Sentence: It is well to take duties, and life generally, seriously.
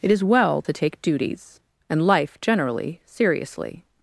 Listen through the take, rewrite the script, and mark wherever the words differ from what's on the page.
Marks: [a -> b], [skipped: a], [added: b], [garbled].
It is well to take duties, and life generally, seriously.